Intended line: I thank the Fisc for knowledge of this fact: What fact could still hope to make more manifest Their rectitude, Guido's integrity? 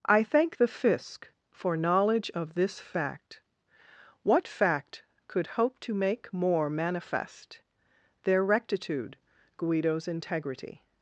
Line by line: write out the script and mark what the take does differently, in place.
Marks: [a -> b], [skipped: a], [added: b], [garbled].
I thank the Fisc for knowledge of this fact: What fact could [skipped: still] hope to make more manifest Their rectitude, Guido's integrity?